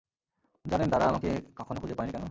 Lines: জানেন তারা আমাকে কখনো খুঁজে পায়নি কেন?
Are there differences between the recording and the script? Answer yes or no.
no